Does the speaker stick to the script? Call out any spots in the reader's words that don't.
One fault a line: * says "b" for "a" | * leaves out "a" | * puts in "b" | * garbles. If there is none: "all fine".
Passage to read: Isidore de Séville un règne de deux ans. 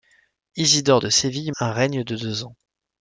all fine